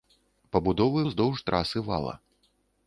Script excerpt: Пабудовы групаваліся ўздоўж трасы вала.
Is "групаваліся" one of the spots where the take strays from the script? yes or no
yes